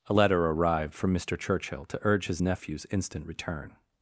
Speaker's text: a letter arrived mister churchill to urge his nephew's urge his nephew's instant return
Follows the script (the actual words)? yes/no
no